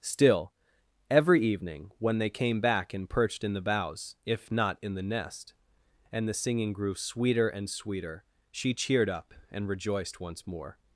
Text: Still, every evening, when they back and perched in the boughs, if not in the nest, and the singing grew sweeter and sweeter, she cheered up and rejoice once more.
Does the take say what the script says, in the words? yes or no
no